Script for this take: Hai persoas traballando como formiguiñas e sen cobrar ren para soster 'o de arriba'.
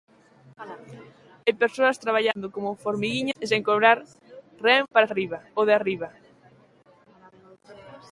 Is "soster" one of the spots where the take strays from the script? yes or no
yes